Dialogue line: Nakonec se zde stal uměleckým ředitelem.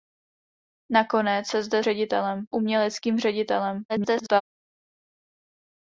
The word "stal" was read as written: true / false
false